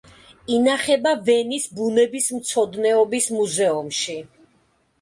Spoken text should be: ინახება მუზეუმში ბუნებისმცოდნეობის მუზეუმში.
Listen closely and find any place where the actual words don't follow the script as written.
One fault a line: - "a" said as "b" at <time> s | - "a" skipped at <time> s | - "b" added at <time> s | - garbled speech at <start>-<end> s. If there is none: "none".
- "მუზეუმში" said as "ვენის" at 1.3 s